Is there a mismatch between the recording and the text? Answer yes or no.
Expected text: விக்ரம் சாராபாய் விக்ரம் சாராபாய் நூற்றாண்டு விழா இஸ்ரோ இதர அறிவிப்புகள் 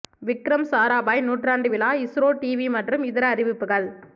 yes